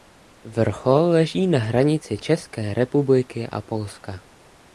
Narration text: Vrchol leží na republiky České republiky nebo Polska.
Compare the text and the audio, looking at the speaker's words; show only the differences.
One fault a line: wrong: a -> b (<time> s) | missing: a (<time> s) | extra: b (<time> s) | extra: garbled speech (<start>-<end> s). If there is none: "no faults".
wrong: republiky -> hranici (1.6 s)
wrong: nebo -> a (3.5 s)